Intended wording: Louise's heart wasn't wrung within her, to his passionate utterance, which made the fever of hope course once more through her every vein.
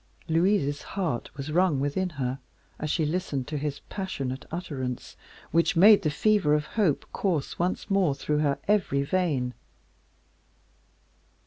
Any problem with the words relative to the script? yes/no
yes